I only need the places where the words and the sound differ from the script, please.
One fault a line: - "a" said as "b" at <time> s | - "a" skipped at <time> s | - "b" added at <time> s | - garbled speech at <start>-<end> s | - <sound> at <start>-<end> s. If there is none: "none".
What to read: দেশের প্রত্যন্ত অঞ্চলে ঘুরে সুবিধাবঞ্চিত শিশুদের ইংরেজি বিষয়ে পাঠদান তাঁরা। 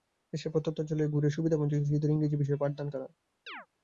- chirp at 3.5-3.7 s